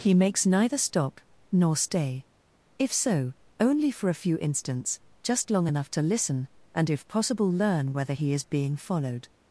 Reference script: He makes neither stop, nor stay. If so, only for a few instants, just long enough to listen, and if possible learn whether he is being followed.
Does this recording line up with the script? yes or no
yes